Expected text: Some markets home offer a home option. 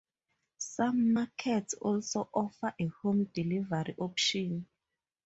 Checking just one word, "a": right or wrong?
right